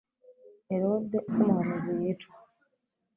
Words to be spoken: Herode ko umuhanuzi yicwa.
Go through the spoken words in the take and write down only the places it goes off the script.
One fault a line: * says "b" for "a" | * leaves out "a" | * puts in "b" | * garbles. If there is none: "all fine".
all fine